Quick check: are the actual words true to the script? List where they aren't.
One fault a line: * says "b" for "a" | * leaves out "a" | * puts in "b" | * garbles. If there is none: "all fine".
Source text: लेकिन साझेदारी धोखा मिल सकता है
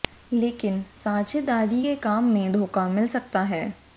* puts in "के काम में"